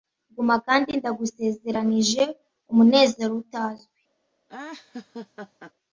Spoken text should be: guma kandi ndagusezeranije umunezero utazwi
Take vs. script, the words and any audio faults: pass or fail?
fail